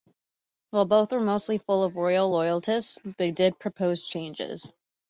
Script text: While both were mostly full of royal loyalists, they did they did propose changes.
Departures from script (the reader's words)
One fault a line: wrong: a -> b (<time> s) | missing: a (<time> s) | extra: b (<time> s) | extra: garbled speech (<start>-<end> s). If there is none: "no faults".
missing: they did (3.6 s)